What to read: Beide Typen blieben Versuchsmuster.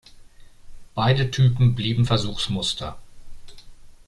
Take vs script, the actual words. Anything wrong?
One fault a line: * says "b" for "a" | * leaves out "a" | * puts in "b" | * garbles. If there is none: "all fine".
all fine